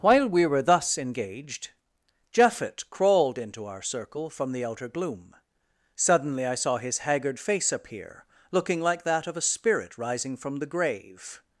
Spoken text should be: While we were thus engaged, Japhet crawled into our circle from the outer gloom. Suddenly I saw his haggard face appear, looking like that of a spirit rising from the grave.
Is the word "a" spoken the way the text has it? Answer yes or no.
yes